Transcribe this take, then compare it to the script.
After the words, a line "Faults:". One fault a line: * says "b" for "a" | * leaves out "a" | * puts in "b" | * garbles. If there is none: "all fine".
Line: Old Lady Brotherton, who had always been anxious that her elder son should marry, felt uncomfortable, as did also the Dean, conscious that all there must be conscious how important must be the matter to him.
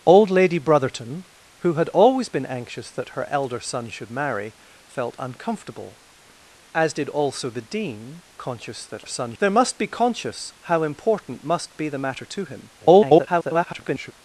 Old Lady Brotherton, who had always been anxious that her elder son should marry, felt uncomfortable, as did also the Dean, conscious that son there must be conscious how important must be the matter to him. [garbled]
Faults:
* says "son" for "all"
* garbles